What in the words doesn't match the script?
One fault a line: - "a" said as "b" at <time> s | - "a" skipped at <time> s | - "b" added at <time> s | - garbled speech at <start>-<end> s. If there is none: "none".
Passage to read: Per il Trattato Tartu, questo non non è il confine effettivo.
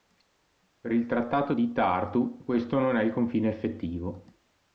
- "di" added at 1.5 s
- "non" skipped at 2.9 s